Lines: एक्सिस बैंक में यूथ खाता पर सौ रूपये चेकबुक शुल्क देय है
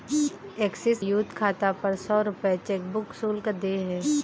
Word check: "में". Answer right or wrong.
wrong